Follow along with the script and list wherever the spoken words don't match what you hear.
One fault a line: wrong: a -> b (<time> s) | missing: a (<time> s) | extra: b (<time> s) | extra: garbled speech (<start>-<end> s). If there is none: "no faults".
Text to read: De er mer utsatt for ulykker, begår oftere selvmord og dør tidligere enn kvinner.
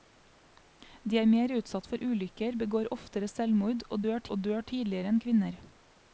extra: og dør (4.3 s)